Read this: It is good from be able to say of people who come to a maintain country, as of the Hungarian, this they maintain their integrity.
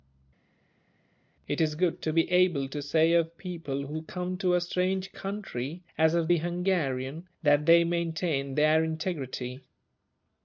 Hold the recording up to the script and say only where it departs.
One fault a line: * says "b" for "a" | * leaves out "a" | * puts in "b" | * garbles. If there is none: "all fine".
* says "to" for "from"
* says "strange" for "maintain"
* says "that" for "this"